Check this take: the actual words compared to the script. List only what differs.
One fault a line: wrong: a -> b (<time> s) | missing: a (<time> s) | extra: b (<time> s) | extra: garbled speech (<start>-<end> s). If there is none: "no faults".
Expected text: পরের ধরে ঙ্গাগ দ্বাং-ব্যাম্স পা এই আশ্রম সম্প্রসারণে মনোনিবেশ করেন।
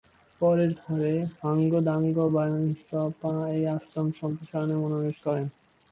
no faults